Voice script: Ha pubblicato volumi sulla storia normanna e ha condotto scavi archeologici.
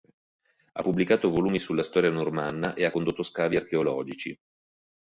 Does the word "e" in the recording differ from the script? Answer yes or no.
no